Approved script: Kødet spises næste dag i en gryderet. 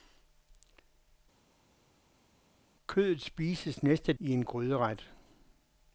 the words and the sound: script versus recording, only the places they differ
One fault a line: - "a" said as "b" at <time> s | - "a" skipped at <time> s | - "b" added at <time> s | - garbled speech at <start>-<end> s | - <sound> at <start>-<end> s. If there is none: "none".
- "dag" skipped at 4.1 s